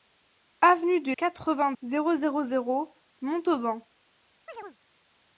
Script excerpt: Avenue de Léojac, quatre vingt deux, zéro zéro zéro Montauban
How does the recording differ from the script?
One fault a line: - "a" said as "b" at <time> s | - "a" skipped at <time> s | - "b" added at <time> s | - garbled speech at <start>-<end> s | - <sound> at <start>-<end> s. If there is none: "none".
- "Léojac" skipped at 1.1 s
- "deux" skipped at 1.7 s
- chirp at 4.5-4.8 s